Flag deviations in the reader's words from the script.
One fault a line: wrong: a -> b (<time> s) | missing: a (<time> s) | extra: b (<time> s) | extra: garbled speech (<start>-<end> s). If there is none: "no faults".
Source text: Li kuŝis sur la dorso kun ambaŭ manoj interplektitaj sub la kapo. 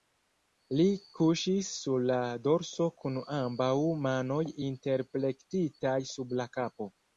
no faults